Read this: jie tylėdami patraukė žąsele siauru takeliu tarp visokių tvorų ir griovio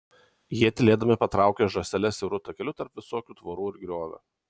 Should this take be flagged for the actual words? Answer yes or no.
no